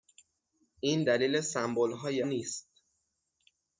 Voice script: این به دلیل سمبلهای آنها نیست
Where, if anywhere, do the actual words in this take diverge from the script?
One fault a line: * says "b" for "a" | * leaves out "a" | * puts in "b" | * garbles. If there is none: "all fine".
* leaves out "به"
* leaves out "آنها"